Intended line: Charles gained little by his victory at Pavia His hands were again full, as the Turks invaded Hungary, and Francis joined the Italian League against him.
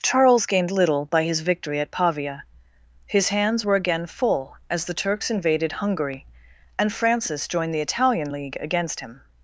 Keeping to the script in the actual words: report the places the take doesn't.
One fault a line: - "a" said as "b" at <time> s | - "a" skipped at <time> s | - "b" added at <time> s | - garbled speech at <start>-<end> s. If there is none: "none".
none